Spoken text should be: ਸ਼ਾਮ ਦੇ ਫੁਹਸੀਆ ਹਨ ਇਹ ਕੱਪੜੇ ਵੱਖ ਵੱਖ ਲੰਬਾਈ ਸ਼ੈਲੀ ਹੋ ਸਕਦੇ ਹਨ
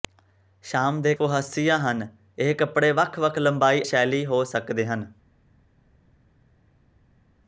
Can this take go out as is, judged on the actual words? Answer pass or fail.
pass